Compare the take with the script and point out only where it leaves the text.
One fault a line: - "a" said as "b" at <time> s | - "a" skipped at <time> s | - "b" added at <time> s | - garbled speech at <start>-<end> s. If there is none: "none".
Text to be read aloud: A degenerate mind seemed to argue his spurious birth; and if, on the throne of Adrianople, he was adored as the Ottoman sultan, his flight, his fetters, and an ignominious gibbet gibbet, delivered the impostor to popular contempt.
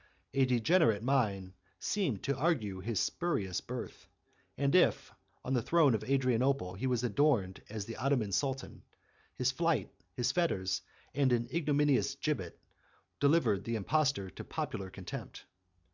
- "gibbet" skipped at 12.6 s